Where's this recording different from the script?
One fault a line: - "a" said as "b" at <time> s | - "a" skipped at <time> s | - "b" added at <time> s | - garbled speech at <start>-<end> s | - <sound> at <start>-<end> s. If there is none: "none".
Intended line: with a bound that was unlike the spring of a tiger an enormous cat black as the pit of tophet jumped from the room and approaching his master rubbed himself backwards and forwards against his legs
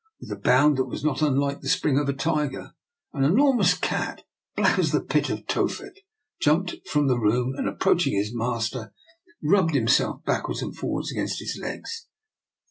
- "not" added at 1.0 s